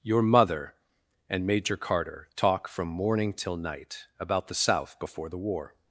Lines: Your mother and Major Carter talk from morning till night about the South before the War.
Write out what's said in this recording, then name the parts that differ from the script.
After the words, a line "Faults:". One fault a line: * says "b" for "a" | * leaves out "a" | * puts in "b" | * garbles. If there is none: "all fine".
Your mother and Major Carter talk from morning till night about the South before the War.
Faults:
all fine